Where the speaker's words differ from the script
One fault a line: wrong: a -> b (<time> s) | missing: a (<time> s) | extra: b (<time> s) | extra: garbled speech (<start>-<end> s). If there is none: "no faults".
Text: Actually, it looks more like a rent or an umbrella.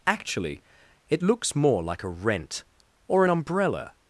no faults